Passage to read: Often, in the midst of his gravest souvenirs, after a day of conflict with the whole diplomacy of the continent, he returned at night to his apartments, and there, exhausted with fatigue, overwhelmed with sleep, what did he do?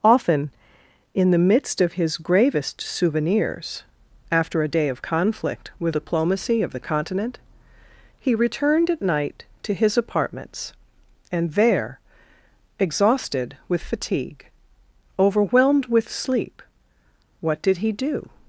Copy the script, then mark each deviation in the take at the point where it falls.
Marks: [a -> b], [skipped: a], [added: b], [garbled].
Often, in the midst of his gravest souvenirs, after a day of conflict with [skipped: the whole] diplomacy of the continent, he returned at night to his apartments, and there, exhausted with fatigue, overwhelmed with sleep, what did he do?